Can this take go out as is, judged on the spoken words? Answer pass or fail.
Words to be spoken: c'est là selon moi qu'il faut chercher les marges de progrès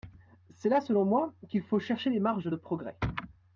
pass